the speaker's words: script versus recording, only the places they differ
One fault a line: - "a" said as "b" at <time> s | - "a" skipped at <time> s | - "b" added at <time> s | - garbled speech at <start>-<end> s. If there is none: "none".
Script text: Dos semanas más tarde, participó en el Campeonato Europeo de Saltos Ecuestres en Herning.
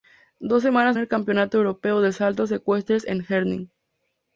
- "más tarde participó" skipped at 1.0 s